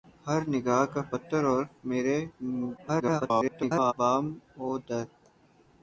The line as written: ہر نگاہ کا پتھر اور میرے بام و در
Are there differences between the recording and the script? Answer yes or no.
yes